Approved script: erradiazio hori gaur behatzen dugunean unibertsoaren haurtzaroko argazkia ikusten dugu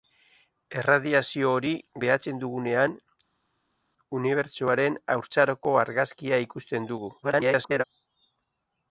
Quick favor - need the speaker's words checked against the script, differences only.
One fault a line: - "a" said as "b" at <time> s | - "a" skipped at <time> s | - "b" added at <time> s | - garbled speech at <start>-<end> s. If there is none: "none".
- "gaur" skipped at 1.7 s
- garbled speech at 7.2-7.8 s